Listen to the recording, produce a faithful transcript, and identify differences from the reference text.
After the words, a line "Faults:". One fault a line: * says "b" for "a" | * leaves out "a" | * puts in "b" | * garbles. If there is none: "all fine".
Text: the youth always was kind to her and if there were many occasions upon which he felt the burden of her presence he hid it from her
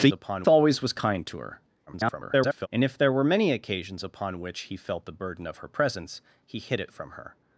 the upon always was kind to her [garbled] and if there were many occasions upon which he felt the burden of her presence he hid it from her
Faults:
* says "upon" for "youth"
* garbles